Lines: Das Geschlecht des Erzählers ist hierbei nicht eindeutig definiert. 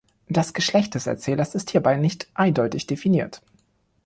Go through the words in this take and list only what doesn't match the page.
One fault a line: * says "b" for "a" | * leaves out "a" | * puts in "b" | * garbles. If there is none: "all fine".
all fine